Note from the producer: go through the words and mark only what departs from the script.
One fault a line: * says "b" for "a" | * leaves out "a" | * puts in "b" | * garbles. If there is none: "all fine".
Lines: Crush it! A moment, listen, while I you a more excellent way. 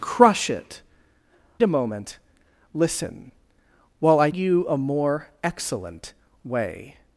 all fine